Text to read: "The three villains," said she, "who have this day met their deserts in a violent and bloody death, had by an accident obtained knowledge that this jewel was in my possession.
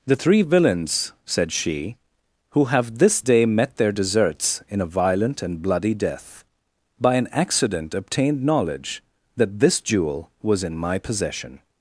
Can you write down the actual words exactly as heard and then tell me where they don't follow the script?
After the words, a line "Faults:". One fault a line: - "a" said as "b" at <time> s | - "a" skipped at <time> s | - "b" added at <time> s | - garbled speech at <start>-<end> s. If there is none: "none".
"The three villains," said she, "who have this day met their deserts in a violent and bloody death, by an accident obtained knowledge that this jewel was in my possession.
Faults:
- "had" skipped at 6.4 s